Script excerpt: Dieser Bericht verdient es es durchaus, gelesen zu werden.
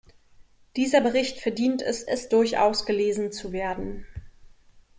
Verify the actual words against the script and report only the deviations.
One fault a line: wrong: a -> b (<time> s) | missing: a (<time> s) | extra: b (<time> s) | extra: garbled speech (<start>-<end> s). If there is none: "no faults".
no faults